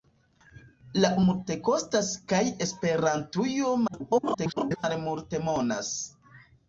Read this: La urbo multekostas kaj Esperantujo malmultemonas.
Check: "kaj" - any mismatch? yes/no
no